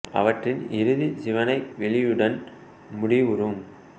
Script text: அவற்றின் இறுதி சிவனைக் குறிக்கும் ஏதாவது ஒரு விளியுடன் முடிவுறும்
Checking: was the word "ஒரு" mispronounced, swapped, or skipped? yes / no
yes